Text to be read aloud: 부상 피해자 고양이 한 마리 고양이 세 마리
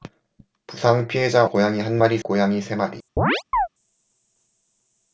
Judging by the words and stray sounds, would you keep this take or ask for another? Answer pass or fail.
fail